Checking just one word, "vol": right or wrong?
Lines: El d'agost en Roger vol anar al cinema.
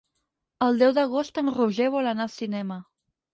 right